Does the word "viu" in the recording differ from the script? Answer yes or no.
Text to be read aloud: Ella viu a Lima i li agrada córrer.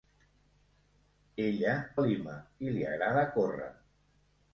yes